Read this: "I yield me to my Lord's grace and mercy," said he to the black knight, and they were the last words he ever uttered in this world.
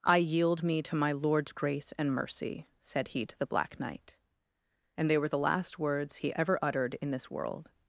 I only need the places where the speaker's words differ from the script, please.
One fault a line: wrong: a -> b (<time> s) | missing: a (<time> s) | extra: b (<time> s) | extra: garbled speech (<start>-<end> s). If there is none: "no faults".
no faults